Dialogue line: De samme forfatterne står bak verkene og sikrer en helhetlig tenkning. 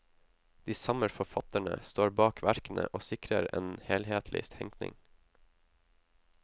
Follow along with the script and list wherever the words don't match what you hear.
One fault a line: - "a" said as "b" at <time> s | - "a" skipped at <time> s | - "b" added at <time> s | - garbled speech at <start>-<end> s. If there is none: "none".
none